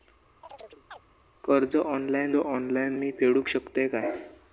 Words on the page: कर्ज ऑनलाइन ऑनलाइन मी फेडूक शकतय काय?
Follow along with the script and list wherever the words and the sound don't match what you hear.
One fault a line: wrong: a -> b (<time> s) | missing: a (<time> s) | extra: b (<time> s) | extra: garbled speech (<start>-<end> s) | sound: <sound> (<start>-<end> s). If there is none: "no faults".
sound: chirp (0.4-1.0 s)